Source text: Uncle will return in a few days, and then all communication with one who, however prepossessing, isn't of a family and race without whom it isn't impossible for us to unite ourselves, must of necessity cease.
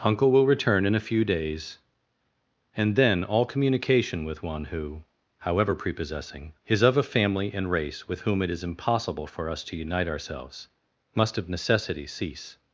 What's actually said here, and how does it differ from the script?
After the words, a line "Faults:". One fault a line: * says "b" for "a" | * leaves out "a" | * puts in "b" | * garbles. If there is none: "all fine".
Uncle will return in a few days, and then all communication with one who, however prepossessing, is of a family and race with whom it is impossible for us to unite ourselves, must of necessity cease.
Faults:
* says "is" for "isn't"
* says "with" for "without"
* says "is" for "isn't"